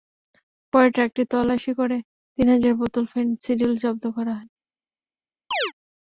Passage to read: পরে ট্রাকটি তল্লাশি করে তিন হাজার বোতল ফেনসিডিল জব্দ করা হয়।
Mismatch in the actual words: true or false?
false